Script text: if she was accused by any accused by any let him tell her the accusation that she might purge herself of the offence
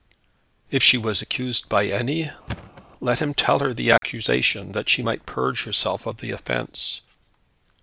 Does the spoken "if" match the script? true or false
true